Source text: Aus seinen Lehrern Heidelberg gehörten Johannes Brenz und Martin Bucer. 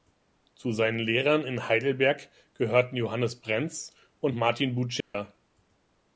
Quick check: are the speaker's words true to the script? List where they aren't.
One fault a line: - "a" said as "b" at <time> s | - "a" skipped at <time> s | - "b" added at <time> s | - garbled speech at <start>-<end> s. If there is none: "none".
- "Aus" said as "Zu" at 0.6 s
- "in" added at 1.4 s